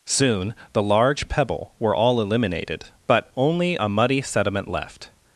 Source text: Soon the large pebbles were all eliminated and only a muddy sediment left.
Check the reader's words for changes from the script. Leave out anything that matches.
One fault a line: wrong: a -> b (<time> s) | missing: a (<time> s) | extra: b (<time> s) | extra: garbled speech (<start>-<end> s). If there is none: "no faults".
wrong: pebbles -> pebble (1.3 s)
wrong: and -> but (3.1 s)